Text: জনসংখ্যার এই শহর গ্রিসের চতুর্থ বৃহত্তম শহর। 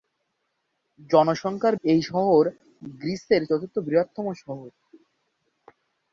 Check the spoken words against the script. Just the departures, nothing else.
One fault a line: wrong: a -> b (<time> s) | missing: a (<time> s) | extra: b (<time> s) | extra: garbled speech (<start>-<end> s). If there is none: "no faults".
no faults